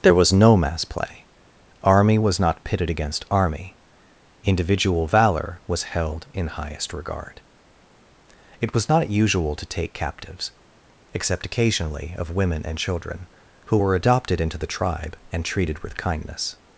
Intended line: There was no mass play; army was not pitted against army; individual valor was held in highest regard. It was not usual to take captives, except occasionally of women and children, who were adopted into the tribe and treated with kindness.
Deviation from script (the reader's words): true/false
false